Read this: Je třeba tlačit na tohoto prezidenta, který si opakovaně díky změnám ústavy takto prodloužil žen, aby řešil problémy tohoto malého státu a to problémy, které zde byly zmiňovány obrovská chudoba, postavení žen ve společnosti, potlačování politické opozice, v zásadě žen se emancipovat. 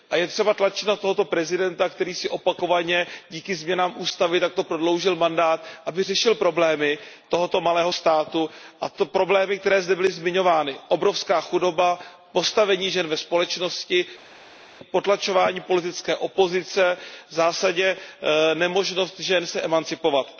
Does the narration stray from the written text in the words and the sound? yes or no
yes